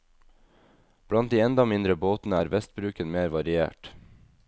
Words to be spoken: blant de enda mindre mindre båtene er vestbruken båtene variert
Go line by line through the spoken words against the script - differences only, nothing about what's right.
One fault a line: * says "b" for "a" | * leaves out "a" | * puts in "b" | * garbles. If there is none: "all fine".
* leaves out "mindre"
* says "mer" for "båtene"